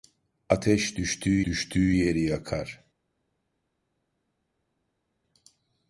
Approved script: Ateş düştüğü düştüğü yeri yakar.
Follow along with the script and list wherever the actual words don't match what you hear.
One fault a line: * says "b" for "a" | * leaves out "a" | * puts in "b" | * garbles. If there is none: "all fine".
all fine